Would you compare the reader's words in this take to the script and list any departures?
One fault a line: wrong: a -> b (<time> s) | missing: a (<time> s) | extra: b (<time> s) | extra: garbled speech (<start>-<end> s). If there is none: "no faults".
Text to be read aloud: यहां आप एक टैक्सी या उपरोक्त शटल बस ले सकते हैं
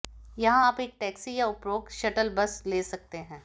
no faults